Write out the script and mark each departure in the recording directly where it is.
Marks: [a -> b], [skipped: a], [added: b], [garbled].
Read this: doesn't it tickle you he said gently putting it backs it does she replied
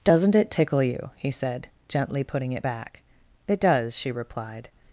doesn't it tickle you he said gently putting it [backs -> back] it does she replied